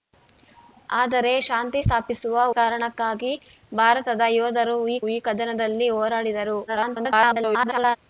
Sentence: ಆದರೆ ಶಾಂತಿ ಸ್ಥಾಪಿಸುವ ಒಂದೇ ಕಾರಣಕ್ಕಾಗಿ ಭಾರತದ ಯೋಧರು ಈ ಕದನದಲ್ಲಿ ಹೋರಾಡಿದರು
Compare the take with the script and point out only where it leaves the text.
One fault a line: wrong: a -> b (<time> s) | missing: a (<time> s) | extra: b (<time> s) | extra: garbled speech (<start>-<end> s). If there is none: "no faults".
missing: ಒಂದೇ (2.4 s)
extra: ಈ (5.1 s)
extra: garbled speech (6.7-8.0 s)